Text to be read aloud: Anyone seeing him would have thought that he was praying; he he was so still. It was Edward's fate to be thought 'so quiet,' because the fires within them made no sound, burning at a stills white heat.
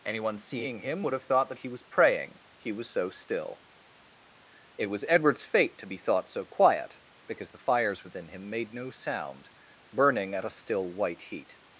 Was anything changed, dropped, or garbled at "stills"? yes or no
yes